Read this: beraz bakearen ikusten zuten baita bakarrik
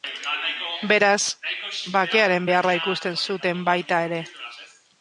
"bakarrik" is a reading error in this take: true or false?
true